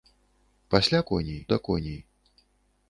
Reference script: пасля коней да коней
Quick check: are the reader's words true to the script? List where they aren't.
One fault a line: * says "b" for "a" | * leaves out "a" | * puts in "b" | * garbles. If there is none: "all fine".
all fine